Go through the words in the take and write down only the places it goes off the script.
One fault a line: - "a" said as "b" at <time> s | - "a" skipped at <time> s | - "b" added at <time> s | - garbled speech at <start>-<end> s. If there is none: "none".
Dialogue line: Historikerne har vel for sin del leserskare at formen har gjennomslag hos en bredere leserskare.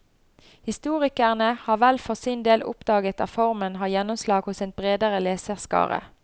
- "leserskare" said as "oppdaget" at 2.6 s